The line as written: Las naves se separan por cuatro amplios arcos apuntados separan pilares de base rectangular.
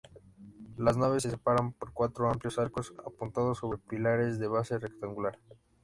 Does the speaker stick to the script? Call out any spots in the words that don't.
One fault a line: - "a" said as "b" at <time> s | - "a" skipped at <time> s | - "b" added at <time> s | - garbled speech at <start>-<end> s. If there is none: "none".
- "separan" said as "sobre" at 3.6 s